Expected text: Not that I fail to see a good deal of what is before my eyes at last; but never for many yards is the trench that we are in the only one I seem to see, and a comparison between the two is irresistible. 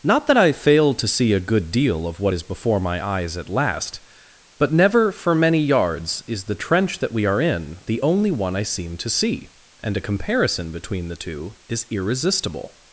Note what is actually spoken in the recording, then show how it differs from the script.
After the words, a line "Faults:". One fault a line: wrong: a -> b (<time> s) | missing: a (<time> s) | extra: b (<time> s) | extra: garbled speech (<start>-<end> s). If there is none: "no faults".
Not that I fail to see a good deal of what is before my eyes at last; but never for many yards is the trench that we are in the only one I seem to see, and a comparison between the two is irresistible.
Faults:
no faults